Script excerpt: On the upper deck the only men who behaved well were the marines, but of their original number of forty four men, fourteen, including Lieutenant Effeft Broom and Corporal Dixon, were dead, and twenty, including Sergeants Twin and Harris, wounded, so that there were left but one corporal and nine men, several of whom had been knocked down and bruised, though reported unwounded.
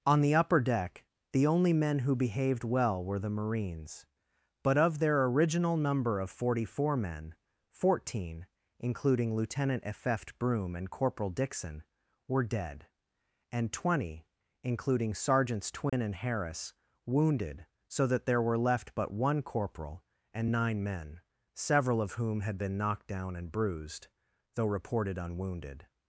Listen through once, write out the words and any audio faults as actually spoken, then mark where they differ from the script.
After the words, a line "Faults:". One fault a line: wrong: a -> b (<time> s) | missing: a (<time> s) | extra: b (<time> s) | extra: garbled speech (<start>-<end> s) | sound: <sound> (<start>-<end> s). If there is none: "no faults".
On the upper deck the only men who behaved well were the marines, but of their original number of forty four men, fourteen, including Lieutenant Effeft Broom and Corporal Dixon, were dead, and twenty, including Sergeants Twin and Harris, wounded, so that there were left but one corporal and nine men, several of whom had been knocked down and bruised, though reported unwounded.
Faults:
sound: dropout (15.9-15.9 s)